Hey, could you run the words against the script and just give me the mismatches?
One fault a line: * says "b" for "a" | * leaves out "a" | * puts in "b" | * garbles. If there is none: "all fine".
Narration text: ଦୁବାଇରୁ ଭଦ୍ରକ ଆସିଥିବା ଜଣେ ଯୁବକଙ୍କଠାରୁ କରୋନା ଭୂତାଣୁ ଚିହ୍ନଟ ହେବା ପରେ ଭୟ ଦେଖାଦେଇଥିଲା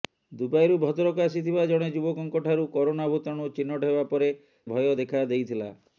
all fine